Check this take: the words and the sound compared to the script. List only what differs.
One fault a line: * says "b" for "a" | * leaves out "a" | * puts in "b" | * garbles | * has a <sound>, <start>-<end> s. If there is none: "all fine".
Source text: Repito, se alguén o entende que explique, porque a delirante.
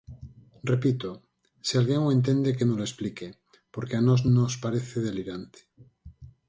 * puts in "nolo"
* puts in "nós nos parece"